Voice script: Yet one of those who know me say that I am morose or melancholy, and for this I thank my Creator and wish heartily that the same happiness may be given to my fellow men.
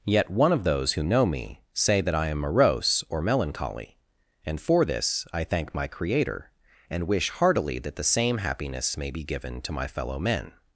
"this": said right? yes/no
yes